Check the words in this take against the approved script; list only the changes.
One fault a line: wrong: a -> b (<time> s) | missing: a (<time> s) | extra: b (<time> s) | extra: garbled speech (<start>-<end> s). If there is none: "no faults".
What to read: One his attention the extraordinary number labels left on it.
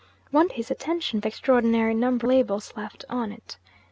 no faults